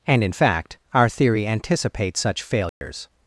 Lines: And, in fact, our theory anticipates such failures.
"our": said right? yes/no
yes